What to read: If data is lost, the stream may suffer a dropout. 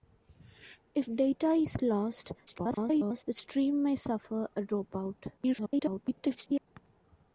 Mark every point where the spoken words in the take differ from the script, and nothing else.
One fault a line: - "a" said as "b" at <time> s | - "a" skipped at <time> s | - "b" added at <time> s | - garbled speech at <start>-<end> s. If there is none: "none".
- garbled speech at 2.5-3.2 s
- garbled speech at 5.4-6.7 s